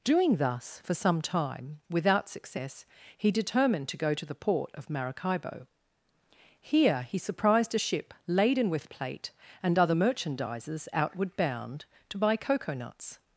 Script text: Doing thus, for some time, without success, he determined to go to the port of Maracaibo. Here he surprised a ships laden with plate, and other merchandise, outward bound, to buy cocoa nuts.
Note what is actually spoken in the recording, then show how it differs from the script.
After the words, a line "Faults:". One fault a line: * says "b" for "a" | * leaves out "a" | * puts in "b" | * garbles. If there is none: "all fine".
Doing thus, for some time, without success, he determined to go to the port of Maracaibo. Here he surprised a ship laden with plate, and other merchandises, outward bound, to buy cocoa nuts.
Faults:
* says "ship" for "ships"
* says "merchandises" for "merchandise"